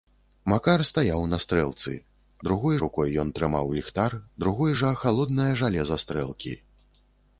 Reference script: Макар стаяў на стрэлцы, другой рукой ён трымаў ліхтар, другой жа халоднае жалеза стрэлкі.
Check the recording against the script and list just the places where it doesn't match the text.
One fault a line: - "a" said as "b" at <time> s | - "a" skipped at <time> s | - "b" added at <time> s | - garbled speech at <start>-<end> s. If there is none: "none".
none